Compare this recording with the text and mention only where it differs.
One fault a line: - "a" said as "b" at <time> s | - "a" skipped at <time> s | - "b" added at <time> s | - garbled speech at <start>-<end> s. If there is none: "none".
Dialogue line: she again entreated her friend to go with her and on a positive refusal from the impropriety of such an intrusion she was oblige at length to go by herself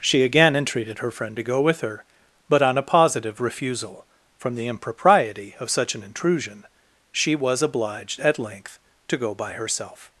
- "and" said as "but" at 2.5 s
- "oblige" said as "obliged" at 7.6 s